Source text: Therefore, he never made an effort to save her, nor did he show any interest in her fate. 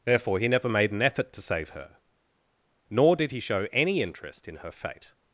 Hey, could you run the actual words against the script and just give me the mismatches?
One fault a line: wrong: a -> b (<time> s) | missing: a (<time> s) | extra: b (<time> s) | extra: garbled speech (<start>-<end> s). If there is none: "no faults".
no faults